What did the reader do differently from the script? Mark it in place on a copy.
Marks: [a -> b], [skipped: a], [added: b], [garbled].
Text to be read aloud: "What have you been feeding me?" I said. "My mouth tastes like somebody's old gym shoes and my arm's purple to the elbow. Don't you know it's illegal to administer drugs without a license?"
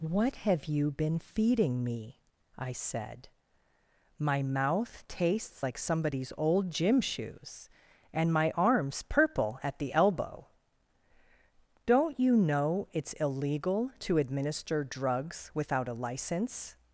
"What have you been feeding me?" I said. "My mouth tastes like somebody's old gym shoes and my arm's purple [to -> at] the elbow. Don't you know it's illegal to administer drugs without a license?"